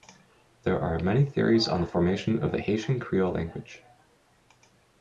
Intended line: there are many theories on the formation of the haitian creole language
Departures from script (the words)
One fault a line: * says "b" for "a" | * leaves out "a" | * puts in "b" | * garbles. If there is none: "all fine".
all fine